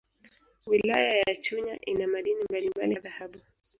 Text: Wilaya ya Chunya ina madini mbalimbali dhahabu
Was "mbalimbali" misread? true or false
false